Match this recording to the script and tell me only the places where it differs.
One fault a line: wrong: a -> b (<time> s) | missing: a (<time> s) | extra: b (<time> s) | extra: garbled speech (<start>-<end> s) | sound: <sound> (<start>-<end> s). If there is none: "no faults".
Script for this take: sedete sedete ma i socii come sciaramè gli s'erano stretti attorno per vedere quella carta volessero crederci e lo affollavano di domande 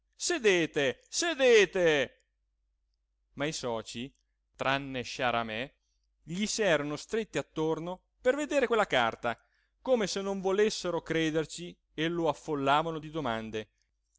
wrong: come -> tranne (4.5 s)
extra: come se non (9.8 s)